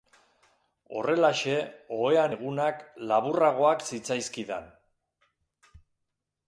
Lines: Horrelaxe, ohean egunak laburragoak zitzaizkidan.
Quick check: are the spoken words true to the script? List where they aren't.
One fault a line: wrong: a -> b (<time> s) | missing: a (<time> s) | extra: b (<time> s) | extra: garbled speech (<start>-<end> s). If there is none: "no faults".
no faults